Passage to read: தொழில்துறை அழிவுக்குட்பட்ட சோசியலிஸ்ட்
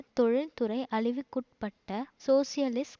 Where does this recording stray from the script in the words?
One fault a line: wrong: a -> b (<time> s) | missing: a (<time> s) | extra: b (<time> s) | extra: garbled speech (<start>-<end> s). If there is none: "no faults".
no faults